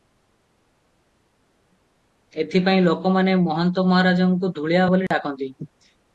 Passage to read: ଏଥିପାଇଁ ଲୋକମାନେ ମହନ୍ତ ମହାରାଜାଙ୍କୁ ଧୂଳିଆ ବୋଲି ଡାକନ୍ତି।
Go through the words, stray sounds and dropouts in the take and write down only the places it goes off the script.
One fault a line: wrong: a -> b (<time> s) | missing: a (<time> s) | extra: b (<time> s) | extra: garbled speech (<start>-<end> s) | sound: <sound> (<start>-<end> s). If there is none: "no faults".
sound: dropout (5.1-5.1 s)